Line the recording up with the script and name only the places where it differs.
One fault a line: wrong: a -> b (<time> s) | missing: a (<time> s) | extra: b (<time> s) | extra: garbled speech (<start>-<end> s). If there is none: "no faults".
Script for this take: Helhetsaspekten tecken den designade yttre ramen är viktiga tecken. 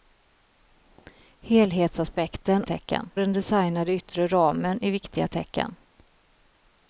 no faults